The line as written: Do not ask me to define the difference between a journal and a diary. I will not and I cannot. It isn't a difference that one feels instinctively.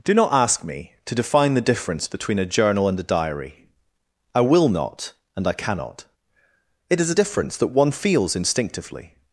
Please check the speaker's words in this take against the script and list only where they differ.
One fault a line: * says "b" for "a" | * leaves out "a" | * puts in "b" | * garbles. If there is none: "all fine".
* says "is" for "isn't"